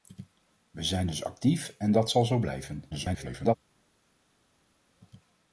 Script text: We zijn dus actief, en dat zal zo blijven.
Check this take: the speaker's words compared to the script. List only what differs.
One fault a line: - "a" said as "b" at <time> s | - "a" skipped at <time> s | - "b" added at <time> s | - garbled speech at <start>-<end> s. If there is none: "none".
- garbled speech at 2.9-3.6 s